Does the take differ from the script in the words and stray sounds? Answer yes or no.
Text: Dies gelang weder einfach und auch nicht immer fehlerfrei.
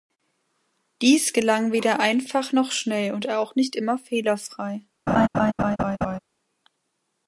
yes